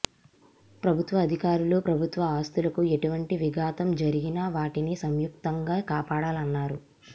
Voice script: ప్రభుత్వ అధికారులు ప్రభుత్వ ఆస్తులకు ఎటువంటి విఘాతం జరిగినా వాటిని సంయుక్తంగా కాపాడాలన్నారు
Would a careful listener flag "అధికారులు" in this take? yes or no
no